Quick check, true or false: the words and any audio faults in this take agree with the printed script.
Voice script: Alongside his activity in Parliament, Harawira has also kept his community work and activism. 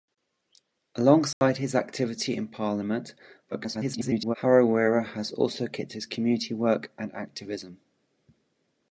false